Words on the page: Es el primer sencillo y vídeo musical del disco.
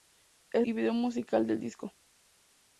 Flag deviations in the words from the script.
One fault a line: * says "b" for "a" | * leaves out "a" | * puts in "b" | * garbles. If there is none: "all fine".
* leaves out "el primer sencillo"